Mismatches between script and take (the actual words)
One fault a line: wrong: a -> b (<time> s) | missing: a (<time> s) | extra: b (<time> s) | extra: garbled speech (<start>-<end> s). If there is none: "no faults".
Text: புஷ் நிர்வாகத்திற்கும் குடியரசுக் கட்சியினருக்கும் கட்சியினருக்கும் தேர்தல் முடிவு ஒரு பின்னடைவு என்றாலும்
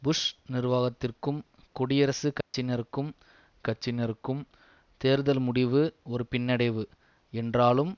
no faults